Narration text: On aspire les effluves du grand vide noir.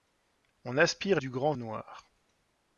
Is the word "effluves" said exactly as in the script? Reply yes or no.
no